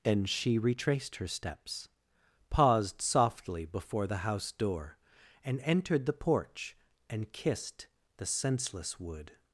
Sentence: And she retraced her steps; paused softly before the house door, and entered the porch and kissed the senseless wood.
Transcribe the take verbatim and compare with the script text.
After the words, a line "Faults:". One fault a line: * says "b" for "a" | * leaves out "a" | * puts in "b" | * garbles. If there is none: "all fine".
And she retraced her steps; paused softly before the house door, and entered the porch and kissed the senseless wood.
Faults:
all fine